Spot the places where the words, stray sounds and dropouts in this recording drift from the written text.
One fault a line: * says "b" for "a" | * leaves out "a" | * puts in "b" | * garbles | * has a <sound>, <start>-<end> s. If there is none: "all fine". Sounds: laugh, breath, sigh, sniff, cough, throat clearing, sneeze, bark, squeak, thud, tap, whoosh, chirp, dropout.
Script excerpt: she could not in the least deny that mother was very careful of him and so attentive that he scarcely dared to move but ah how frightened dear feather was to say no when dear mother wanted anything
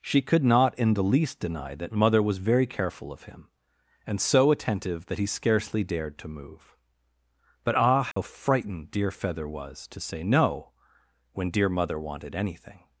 * has a dropout, 8.1-8.2 s